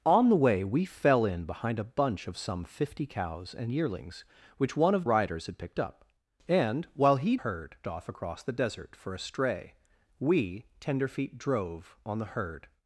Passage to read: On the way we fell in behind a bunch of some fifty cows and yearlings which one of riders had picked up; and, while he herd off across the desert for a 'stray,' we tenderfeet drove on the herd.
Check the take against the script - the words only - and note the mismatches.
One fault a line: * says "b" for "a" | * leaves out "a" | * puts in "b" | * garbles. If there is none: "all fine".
all fine